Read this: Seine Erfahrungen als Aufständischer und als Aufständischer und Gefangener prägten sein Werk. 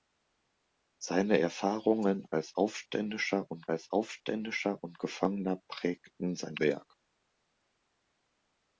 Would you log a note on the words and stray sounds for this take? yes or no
no